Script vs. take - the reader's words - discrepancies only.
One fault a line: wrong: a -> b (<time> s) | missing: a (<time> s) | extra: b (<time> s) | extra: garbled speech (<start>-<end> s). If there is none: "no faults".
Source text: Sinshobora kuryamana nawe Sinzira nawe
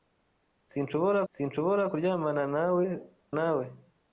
extra: sinshobora (1.3 s)
missing: Sinzira (2.8 s)